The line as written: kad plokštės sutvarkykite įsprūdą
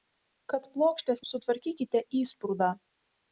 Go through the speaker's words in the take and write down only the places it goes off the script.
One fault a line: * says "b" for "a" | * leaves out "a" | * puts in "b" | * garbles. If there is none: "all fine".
all fine